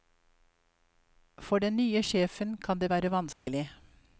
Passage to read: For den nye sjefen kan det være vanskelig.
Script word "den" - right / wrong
right